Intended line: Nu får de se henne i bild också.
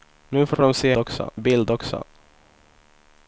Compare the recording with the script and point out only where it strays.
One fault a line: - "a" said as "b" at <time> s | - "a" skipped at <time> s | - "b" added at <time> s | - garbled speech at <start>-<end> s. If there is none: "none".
- "får" added at 0.5 s
- "henne" said as "också" at 1.0 s